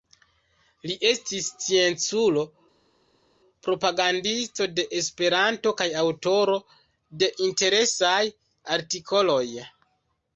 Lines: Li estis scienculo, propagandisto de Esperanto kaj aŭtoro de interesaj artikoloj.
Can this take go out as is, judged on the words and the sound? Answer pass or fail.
pass